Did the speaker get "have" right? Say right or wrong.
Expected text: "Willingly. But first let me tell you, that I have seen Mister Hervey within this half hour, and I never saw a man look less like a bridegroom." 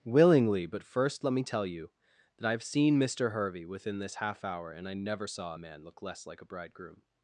right